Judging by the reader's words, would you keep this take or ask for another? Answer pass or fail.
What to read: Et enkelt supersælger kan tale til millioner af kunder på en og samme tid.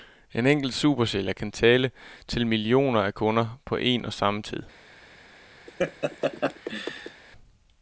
fail